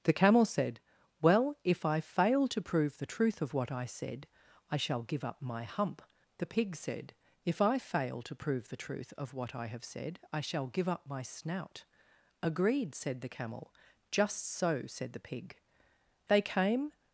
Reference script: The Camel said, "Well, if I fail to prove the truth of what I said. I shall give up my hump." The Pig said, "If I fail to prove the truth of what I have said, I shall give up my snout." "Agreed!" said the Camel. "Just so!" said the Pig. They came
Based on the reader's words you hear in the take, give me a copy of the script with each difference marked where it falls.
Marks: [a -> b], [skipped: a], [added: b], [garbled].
The Camel said, "Well, if I fail to prove the truth of what I said. I shall give up my hump." The Pig said, "If I fail to prove the truth of what I have said, I shall give up my snout." "Agreed!" said the Camel. "Just so!" said the Pig. They came